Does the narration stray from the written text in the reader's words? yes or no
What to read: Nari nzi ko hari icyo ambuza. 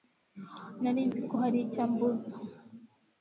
no